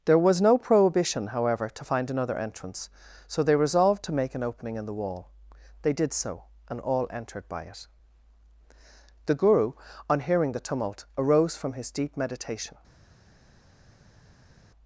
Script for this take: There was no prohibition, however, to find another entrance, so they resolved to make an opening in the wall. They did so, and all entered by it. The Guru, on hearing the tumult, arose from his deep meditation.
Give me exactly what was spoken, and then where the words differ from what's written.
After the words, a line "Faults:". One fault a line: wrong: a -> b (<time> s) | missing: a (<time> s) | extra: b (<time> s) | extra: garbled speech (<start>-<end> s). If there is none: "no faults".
There was no prohibition, however, to find another entrance, so they resolved to make an opening in the wall. They did so, and all entered by it. The Guru, on hearing the tumult, arose from his deep meditation.
Faults:
no faults